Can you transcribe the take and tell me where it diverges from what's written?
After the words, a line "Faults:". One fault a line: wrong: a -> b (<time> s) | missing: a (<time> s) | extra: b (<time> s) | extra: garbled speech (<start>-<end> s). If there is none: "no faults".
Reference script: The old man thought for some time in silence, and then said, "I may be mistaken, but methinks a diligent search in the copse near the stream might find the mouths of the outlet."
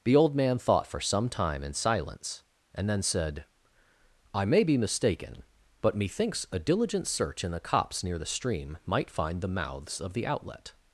The old man thought for some time in silence, and then said, "I may be mistaken, but methinks a diligent search in the copse near the stream might find the mouths of the outlet."
Faults:
no faults